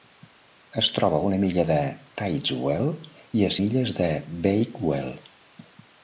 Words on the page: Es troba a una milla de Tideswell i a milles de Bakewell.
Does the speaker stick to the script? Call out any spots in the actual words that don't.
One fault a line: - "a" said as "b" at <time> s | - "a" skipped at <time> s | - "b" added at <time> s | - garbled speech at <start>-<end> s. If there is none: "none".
none